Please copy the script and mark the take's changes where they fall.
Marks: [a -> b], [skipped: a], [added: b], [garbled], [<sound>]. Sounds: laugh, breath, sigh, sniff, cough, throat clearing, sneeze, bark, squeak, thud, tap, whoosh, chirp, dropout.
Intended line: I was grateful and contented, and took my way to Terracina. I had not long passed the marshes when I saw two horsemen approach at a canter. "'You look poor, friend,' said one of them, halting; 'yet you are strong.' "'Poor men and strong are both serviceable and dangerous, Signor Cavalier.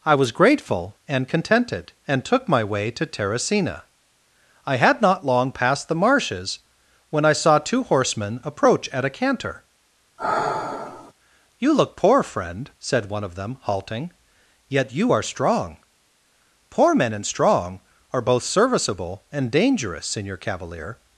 I was grateful and contented, and took my way to Terracina. I had not long passed the marshes when I saw two horsemen approach at a canter. [sigh] "'You look poor, friend,' said one of them, halting; 'yet you are strong.' "'Poor men and strong are both serviceable and dangerous, Signor Cavalier.